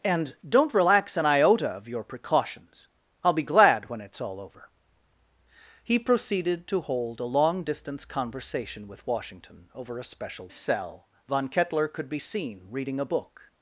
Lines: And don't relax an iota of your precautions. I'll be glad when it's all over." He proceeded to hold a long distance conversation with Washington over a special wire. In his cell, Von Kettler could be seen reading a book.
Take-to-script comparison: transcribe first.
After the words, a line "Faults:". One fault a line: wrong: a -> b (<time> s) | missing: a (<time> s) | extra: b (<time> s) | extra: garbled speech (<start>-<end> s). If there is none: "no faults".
And don't relax an iota of your precautions. I'll be glad when it's all over." He proceeded to hold a long distance conversation with Washington over a special cell, Von Kettler could be seen reading a book.
Faults:
missing: wire In his (10.5 s)